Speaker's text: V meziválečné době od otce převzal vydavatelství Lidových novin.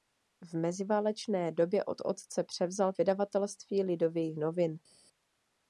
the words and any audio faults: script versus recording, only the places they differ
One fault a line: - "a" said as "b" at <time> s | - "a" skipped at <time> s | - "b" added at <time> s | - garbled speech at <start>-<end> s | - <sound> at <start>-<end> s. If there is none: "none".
none